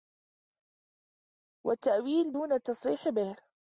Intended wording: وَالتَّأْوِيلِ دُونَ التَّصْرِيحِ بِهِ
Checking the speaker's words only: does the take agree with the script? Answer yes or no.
yes